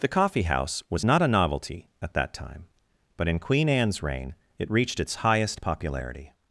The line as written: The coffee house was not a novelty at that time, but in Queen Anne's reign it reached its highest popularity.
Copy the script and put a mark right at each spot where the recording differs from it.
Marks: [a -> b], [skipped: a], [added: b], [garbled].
The coffee house was not a novelty at that time, but in Queen Anne's reign it reached its highest popularity.